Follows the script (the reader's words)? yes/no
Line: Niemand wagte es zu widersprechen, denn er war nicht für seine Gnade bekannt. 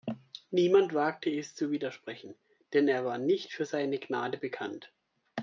yes